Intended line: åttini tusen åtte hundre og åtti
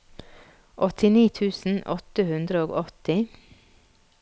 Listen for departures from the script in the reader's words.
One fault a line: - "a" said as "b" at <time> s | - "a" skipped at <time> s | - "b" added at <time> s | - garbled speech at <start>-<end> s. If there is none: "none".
none